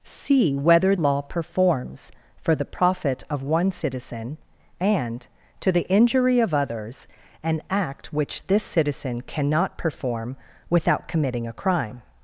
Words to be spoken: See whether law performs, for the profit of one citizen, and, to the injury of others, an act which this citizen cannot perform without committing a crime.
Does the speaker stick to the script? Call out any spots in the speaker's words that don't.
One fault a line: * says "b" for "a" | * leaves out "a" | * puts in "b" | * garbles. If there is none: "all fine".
all fine